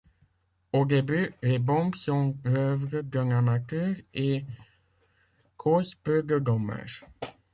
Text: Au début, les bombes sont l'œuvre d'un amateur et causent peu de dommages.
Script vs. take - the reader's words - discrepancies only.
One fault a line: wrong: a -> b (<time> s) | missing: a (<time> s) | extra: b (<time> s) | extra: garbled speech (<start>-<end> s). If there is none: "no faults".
no faults